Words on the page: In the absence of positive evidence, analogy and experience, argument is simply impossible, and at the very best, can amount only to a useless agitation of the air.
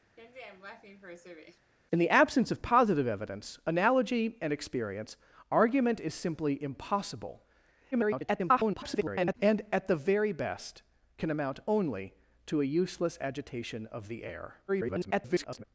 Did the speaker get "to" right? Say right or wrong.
right